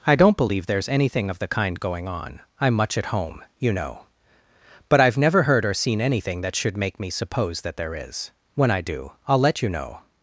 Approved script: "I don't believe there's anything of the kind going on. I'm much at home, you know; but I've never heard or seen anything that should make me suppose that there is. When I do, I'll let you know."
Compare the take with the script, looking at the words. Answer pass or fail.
pass